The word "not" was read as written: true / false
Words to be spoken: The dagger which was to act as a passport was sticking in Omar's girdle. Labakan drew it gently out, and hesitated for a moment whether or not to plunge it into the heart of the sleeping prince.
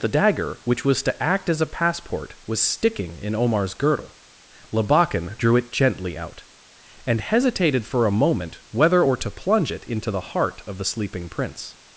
false